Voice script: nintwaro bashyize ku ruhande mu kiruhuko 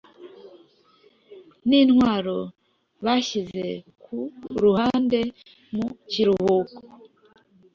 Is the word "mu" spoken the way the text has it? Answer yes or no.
yes